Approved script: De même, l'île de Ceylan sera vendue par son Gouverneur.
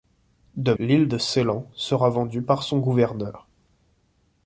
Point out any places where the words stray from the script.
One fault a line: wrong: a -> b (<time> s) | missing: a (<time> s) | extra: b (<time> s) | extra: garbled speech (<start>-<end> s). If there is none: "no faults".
missing: même (0.7 s)